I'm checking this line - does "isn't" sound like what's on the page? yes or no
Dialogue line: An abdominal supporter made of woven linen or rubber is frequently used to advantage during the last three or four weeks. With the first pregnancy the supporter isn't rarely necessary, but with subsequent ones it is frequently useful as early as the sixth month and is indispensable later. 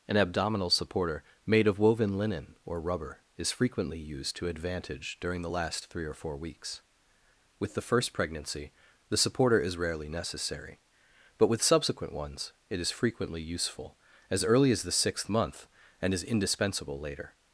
no